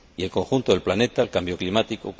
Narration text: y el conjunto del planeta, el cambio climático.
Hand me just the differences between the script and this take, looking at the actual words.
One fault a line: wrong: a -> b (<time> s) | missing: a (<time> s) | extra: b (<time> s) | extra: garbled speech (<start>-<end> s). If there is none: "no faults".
no faults